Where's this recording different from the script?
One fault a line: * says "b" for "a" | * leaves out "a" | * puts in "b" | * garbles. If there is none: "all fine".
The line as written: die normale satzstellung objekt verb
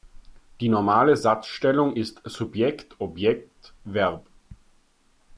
* puts in "ist subjekt"